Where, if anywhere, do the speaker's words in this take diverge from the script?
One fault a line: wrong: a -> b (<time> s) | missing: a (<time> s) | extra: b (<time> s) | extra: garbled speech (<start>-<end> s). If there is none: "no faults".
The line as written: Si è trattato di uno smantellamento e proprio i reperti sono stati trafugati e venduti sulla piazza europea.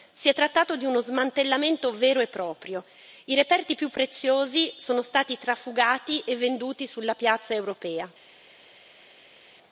extra: vero (1.9 s)
extra: più preziosi (3.8 s)